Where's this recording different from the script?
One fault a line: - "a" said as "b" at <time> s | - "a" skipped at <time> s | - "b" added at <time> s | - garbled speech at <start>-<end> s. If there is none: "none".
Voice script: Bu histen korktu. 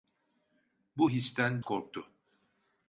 none